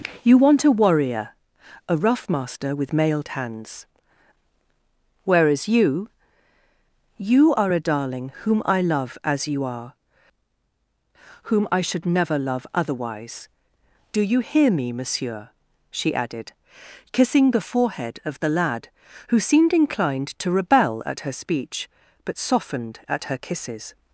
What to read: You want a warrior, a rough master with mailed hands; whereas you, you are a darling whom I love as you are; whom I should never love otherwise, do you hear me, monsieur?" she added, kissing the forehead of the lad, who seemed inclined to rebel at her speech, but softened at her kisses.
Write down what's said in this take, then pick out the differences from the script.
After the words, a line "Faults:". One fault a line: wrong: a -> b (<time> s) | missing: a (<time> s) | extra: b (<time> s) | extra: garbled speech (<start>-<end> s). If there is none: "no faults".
You want a warrior, a rough master with mailed hands; whereas you, you are a darling whom I love as you are; whom I should never love otherwise, do you hear me, monsieur?" she added, kissing the forehead of the lad, who seemed inclined to rebel at her speech, but softened at her kisses.
Faults:
no faults